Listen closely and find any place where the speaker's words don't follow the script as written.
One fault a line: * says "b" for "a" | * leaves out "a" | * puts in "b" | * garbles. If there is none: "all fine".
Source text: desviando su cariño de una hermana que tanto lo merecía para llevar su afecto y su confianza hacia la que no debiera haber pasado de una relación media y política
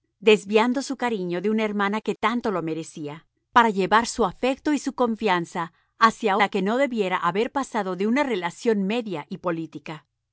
all fine